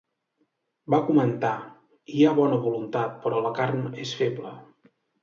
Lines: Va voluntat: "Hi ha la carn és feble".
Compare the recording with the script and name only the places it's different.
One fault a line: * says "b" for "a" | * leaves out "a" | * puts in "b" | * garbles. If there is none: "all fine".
* says "comentar" for "voluntat"
* puts in "bona voluntat però"